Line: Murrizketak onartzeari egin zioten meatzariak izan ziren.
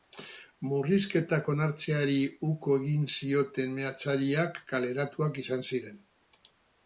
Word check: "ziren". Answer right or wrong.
right